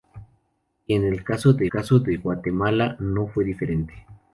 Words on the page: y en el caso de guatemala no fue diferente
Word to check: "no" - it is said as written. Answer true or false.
true